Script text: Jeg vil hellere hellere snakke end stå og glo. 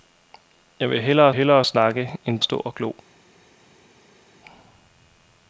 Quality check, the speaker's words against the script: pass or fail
pass